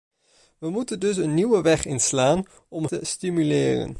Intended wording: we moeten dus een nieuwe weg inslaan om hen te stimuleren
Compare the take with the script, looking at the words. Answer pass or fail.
fail